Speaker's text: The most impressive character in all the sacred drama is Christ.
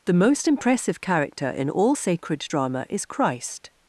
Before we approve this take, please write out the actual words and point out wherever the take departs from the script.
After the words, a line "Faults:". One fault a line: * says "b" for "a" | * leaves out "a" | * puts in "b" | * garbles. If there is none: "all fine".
The most impressive character in all sacred drama is Christ.
Faults:
* leaves out "the"